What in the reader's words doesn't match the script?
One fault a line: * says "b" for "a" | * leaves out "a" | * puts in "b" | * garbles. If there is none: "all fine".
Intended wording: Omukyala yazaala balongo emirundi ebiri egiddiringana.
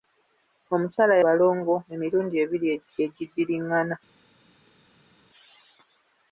* leaves out "yazaala"